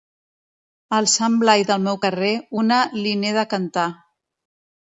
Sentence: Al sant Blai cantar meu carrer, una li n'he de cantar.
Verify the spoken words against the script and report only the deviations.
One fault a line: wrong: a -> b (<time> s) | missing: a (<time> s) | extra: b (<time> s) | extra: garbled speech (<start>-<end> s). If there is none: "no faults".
wrong: cantar -> del (1.7 s)